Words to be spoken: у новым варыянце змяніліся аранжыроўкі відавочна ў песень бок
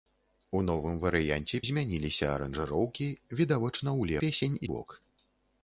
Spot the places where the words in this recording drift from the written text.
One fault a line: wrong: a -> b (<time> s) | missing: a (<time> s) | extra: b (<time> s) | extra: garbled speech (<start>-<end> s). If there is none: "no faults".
no faults